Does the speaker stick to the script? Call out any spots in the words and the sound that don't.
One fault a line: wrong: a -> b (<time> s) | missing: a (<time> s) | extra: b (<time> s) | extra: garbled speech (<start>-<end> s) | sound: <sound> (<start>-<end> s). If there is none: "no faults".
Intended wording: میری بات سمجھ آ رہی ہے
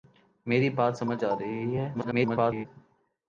extra: garbled speech (1.9-2.7 s)